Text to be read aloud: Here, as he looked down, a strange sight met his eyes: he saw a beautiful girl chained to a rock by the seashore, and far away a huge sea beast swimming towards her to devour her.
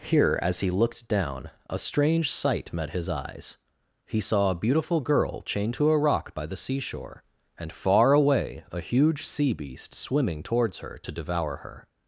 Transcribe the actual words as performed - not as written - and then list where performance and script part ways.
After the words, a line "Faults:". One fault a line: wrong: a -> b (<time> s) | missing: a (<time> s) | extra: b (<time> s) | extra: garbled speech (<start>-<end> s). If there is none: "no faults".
Here, as he looked down, a strange sight met his eyes: he saw a beautiful girl chained to a rock by the seashore, and far away a huge sea beast swimming towards her to devour her.
Faults:
no faults